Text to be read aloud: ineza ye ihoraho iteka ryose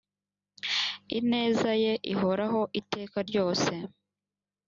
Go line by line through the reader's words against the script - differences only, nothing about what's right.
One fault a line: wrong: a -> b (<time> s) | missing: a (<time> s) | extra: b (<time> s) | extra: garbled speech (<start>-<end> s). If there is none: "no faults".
no faults